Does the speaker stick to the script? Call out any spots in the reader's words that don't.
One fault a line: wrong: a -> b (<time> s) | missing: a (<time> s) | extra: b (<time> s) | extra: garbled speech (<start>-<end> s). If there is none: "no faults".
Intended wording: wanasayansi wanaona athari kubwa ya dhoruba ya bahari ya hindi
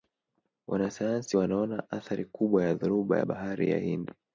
no faults